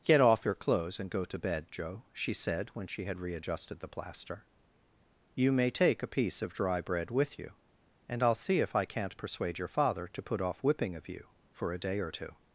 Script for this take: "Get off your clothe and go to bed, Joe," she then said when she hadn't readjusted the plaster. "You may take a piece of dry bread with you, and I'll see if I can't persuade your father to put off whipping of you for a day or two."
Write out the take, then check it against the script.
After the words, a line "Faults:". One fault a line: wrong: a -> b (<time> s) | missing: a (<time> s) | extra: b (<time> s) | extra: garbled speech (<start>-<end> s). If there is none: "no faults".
"Get off your clothes and go to bed, Joe," she said when she had readjusted the plaster. "You may take a piece of dry bread with you, and I'll see if I can't persuade your father to put off whipping of you for a day or two."
Faults:
wrong: clothe -> clothes (0.6 s)
missing: then (2.3 s)
wrong: hadn't -> had (3.0 s)